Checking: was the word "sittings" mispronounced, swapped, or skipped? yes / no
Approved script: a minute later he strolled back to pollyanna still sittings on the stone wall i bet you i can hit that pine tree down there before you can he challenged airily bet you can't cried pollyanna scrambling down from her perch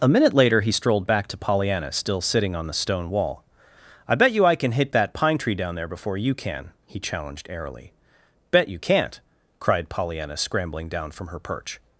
yes